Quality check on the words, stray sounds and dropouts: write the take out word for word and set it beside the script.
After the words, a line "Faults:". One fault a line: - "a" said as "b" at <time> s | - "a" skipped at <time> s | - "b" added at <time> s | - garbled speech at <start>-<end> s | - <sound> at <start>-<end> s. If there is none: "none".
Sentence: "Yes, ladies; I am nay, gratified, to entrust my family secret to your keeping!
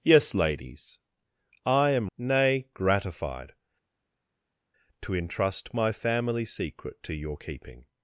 "Yes, ladies; I am nay, gratified, to entrust my family secret to your keeping!
Faults:
none